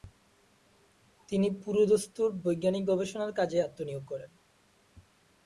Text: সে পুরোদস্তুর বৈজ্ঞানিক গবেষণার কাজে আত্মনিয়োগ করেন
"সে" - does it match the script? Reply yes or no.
no